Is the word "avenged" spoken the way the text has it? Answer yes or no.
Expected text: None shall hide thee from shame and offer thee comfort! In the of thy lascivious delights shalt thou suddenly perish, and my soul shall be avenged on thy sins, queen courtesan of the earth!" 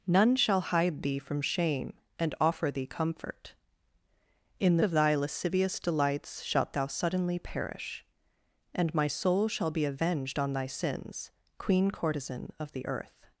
yes